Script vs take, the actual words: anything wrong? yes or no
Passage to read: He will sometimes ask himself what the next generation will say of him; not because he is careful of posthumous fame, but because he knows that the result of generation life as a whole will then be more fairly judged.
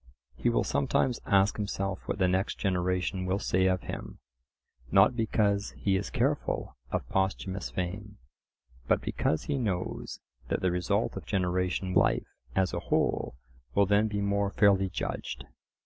no